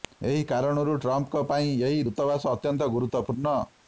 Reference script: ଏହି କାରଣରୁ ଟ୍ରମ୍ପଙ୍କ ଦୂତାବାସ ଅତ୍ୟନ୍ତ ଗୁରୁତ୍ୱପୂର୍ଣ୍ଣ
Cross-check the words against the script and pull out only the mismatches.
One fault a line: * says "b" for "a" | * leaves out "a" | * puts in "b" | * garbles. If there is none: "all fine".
* puts in "ପାଇଁ ଏହି"